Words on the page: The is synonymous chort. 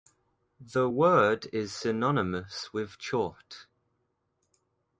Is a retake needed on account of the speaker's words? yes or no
yes